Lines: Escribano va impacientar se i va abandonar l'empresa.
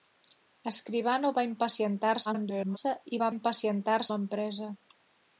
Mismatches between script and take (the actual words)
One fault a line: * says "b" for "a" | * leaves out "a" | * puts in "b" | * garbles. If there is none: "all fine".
* garbles
* says "impacientar" for "abandonar"